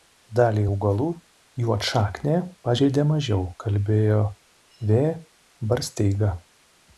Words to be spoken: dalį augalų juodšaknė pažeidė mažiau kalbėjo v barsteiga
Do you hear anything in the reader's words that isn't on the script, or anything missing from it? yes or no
no